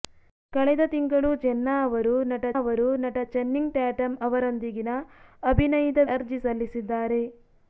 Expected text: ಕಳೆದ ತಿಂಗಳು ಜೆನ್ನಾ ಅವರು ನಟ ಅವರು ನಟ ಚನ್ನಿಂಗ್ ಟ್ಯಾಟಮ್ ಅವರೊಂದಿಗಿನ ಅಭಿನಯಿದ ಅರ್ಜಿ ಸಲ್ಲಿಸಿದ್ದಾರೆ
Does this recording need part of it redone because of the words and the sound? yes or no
no